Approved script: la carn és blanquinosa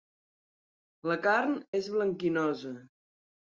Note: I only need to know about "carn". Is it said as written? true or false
true